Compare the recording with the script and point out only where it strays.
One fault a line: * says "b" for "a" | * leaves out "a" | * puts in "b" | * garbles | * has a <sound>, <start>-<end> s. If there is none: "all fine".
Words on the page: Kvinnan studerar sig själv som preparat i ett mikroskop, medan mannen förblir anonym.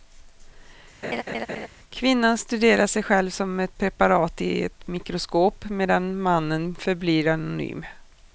* has a laugh, 1.0-1.7 s
* puts in "ett"